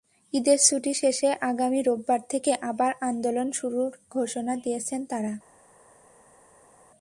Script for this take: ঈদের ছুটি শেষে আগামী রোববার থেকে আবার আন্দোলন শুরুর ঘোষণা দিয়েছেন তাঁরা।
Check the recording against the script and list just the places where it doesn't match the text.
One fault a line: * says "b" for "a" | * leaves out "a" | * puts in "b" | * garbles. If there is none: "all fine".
all fine